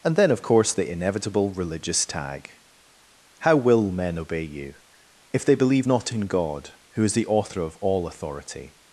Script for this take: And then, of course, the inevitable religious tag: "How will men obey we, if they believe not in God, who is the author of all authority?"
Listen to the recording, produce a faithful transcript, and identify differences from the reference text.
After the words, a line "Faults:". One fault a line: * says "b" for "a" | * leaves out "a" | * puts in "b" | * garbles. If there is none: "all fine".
And then, of course, the inevitable religious tag: "How will men obey you, if they believe not in God, who is the author of all authority?"
Faults:
* says "you" for "we"